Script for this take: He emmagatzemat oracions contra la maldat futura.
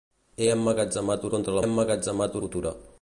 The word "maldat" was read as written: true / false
false